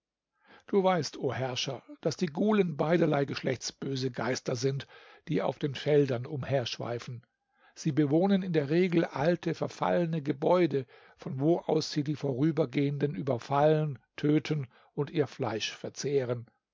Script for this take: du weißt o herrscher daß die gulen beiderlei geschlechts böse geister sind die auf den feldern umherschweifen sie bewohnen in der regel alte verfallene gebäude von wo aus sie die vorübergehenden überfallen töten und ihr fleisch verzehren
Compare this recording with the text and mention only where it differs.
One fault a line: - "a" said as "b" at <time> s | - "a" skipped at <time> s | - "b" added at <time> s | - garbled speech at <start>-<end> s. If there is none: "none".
none